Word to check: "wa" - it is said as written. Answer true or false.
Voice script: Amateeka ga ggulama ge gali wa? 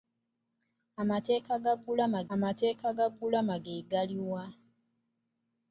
true